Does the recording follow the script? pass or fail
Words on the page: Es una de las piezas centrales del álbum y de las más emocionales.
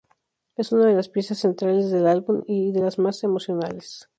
pass